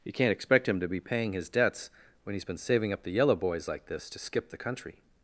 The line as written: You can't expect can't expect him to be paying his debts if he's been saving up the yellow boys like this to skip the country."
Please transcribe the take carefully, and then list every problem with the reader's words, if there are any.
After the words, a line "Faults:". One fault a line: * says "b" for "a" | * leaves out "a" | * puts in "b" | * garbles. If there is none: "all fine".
You can't expect him to be paying his debts when he's been saving up the yellow boys like this to skip the country."
Faults:
* leaves out "can't expect"
* says "when" for "if"